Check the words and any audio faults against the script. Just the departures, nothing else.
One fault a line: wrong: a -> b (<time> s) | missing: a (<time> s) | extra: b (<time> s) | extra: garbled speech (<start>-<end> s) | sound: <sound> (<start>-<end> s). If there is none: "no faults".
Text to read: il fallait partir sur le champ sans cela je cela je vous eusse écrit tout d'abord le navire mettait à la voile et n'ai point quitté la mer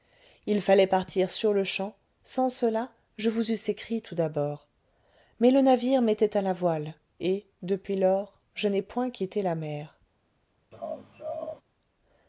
missing: cela je (3.3 s)
extra: mais (5.4 s)
extra: depuis lors je (7.6 s)
sound: laugh (10.7-11.6 s)